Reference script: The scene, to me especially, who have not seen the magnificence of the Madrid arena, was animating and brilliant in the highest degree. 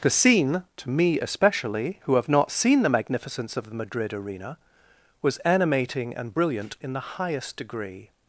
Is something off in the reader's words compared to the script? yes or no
no